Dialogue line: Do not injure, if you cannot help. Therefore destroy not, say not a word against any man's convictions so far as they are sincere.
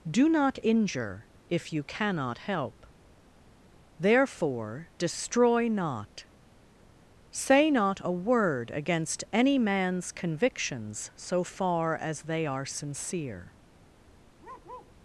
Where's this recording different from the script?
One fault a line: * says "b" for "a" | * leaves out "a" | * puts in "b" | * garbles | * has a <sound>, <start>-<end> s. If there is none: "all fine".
* has a bark, 14.4-14.9 s